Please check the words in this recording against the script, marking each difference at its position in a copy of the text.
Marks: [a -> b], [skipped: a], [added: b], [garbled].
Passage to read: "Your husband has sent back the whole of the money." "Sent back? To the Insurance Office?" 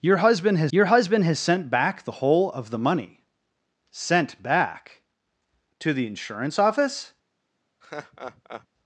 "Your husband has [added: your husband has] sent back the whole of the money." "Sent back? To the Insurance Office?"